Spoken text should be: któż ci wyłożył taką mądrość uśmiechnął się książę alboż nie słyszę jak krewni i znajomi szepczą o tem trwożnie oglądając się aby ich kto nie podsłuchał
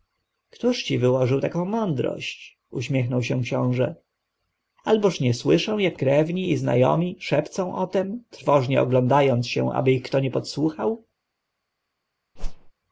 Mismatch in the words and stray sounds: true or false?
true